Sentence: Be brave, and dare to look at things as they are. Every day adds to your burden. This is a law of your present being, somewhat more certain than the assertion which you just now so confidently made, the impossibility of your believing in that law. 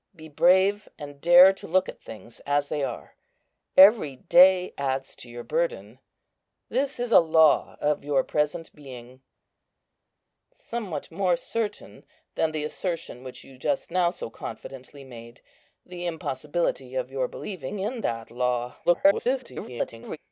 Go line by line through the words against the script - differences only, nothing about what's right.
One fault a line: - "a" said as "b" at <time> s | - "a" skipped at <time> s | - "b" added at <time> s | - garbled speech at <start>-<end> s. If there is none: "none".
- garbled speech at 18.8-20.2 s